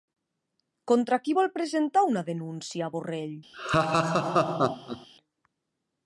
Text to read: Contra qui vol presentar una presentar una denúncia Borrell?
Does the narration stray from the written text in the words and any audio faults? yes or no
yes